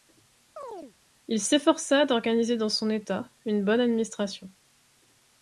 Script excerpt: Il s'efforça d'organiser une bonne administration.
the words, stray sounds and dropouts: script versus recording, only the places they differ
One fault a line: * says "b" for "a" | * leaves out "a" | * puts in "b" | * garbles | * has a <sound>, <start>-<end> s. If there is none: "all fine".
* has a chirp, 0.6-0.9 s
* puts in "dans son État"